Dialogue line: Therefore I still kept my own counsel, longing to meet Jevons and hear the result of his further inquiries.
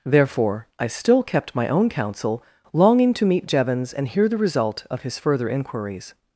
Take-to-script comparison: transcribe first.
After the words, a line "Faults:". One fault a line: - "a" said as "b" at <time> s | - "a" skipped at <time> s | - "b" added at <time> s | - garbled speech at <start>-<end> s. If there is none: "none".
Therefore I still kept my own counsel, longing to meet Jevons and hear the result of his further inquiries.
Faults:
none